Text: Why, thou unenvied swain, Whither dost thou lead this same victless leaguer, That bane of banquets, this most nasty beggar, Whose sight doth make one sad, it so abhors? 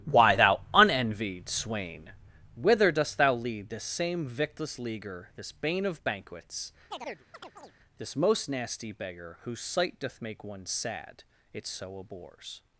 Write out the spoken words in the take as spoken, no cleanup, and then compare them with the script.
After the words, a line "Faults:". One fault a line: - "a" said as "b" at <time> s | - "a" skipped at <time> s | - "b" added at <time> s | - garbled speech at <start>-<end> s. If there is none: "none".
Why, thou unenvied swain, Whither dost thou lead this same victless leaguer, This bane of banquets, this most nasty beggar, Whose sight doth make one sad, it so abhors?
Faults:
- "That" said as "This" at 5.4 s